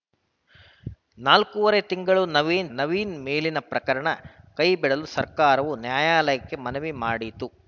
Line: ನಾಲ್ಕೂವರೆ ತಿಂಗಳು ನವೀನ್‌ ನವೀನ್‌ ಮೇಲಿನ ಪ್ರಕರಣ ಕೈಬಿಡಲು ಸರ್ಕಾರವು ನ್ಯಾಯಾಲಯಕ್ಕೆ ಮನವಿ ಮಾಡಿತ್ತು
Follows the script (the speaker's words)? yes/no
yes